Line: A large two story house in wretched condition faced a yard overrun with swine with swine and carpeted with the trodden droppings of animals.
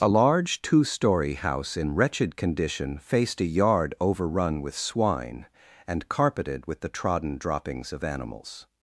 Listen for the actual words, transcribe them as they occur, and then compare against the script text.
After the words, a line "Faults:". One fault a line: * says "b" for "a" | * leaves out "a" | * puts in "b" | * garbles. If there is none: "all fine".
A large two story house in wretched condition faced a yard overrun with swine and carpeted with the trodden droppings of animals.
Faults:
* leaves out "with swine"